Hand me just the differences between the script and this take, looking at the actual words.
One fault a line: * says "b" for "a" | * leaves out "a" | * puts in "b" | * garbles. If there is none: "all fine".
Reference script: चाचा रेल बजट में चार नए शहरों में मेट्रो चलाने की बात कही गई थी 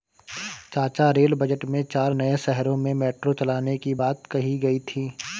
all fine